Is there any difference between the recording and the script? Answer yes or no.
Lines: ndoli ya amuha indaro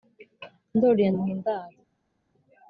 no